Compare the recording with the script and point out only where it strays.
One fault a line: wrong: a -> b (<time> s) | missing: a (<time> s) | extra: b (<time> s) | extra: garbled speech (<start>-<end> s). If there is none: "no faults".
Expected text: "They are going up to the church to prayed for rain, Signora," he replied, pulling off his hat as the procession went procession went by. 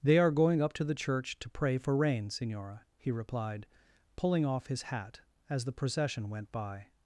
wrong: prayed -> pray (1.5 s)
missing: procession went (6.5 s)